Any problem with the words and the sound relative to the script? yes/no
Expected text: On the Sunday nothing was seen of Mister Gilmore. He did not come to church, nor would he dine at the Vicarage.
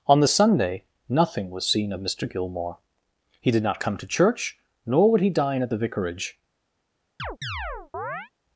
yes